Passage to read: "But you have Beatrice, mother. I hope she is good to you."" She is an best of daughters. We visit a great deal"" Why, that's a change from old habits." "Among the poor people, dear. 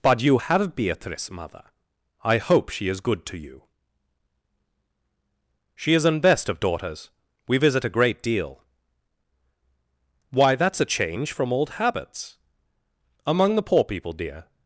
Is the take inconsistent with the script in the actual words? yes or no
no